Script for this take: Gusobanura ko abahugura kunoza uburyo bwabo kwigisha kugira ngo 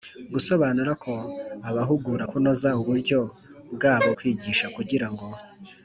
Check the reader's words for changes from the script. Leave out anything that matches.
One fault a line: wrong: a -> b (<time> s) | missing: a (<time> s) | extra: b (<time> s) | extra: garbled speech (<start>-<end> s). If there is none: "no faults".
no faults